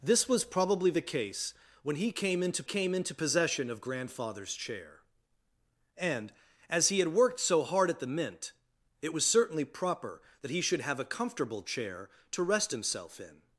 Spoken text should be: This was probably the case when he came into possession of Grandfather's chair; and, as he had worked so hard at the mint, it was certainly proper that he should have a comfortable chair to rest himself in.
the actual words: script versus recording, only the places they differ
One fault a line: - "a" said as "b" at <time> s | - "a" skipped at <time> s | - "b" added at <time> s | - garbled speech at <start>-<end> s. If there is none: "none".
- "came into" added at 2.6 s